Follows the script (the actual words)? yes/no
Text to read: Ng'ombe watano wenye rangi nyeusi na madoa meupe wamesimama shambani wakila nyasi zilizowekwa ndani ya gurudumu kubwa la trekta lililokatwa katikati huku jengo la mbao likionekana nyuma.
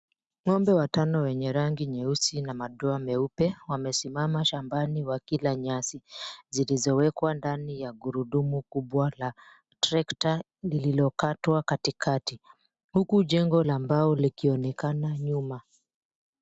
yes